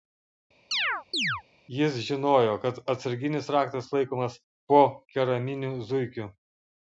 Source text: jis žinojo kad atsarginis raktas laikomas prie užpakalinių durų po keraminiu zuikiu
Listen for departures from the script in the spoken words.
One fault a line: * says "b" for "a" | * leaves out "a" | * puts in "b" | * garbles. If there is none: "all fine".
* leaves out "prie užpakalinių durų"